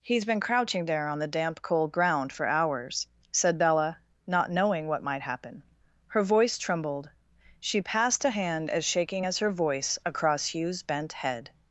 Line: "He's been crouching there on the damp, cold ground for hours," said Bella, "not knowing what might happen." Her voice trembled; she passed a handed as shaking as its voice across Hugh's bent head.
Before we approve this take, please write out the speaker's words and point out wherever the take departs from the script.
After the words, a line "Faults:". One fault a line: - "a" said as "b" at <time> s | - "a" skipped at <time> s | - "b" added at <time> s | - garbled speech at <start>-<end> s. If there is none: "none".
"He's been crouching there on the damp, cold ground for hours," said Bella, "not knowing what might happen." Her voice trembled; she passed a hand as shaking as her voice across Hugh's bent head.
Faults:
- "handed" said as "hand" at 8.3 s
- "its" said as "her" at 9.4 s